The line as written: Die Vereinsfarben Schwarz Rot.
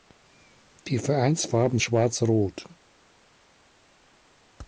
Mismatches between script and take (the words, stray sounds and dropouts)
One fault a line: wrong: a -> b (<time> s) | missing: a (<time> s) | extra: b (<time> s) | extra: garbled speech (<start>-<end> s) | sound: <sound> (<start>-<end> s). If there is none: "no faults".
no faults